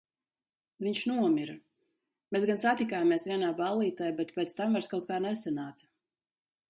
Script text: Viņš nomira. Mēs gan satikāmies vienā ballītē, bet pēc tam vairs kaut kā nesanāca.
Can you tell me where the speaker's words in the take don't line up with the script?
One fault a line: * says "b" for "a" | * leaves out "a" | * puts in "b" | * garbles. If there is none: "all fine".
all fine